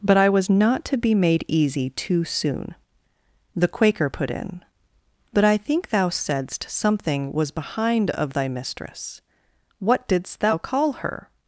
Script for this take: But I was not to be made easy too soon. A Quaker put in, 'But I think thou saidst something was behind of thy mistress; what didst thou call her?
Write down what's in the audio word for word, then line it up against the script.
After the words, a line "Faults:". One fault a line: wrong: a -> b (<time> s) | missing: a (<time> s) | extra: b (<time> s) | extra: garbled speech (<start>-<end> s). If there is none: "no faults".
But I was not to be made easy too soon. The Quaker put in, 'But I think thou saidst something was behind of thy mistress; what didst thou call her?
Faults:
wrong: A -> The (3.5 s)